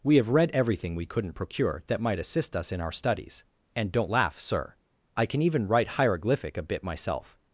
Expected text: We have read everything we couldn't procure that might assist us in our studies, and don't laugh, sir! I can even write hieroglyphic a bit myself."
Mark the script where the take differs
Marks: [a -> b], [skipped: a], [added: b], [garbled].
We have read everything we couldn't procure that might assist us in our studies, and don't laugh, sir! I can even write hieroglyphic a bit myself."